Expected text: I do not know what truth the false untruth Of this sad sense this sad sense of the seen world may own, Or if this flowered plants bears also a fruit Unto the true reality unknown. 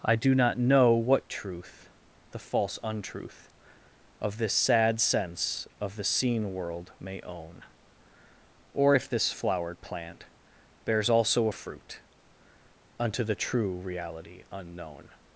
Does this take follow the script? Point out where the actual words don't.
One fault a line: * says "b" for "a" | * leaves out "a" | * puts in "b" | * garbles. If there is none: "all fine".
* leaves out "this sad sense"
* says "plant" for "plants"